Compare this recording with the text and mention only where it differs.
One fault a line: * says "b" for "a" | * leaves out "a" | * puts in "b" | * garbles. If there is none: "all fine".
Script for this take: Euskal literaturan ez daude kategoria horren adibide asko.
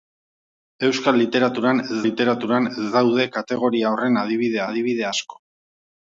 * puts in "literaturan ez"
* puts in "adibide"